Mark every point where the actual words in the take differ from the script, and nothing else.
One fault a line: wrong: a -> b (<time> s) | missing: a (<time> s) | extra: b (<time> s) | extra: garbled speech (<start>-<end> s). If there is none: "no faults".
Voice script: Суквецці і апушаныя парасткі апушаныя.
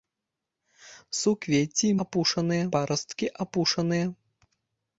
no faults